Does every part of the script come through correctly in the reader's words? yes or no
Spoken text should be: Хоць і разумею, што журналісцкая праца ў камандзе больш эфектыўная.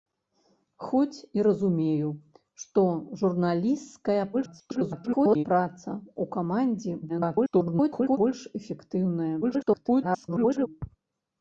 no